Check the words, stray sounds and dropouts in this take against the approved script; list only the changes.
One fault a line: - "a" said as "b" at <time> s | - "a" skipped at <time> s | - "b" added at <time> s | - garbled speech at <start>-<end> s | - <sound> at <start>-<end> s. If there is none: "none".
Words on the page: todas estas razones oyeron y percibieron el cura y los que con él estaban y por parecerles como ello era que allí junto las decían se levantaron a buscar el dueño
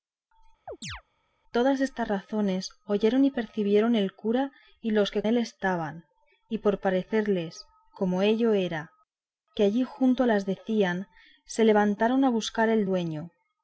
- chirp at 0.7-1.0 s
- "con" skipped at 5.2 s